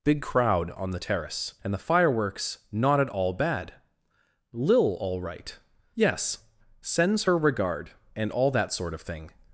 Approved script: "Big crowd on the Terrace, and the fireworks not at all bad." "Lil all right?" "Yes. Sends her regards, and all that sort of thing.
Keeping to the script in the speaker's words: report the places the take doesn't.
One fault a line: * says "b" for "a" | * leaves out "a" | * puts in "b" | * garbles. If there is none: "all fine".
* says "regard" for "regards"